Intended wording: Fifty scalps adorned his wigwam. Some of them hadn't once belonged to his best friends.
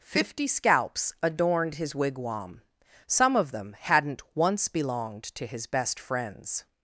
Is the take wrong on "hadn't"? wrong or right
right